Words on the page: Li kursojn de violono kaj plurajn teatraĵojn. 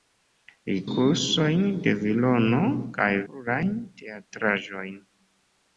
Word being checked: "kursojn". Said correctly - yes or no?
yes